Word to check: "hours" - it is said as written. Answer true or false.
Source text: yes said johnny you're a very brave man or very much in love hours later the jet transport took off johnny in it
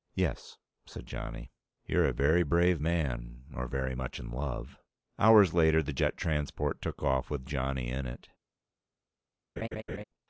true